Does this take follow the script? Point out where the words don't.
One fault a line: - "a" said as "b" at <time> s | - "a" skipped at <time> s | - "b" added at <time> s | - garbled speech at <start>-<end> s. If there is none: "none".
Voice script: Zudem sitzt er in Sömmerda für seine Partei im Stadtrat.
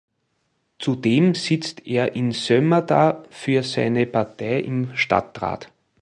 none